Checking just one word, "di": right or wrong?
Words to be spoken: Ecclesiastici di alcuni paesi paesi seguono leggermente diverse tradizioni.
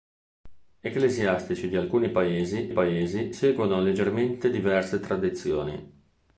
right